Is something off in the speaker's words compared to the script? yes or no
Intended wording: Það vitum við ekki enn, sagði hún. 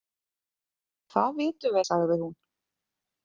yes